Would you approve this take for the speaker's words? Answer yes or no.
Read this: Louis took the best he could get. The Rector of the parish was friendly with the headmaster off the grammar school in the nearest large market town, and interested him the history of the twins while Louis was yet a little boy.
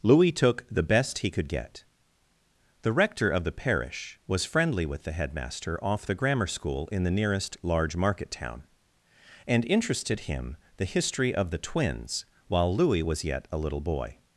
yes